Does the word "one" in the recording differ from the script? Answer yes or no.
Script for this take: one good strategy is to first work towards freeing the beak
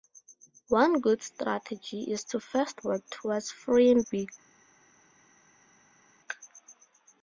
no